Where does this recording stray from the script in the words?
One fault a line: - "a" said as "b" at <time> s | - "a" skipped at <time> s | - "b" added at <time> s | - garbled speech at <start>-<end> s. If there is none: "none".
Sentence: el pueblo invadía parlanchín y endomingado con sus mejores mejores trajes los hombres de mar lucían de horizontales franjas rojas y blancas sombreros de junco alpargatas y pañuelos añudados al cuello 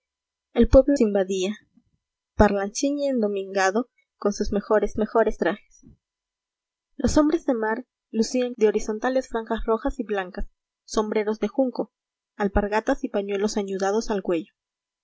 none